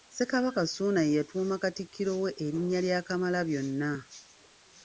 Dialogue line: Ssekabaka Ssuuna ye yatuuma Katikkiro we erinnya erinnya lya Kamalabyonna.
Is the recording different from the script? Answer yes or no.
yes